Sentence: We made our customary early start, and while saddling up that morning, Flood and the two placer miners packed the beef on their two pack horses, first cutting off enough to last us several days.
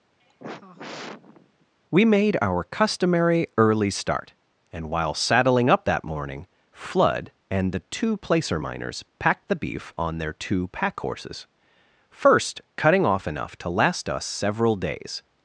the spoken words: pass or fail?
pass